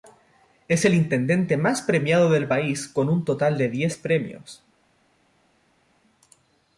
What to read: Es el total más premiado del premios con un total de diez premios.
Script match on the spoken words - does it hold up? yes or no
no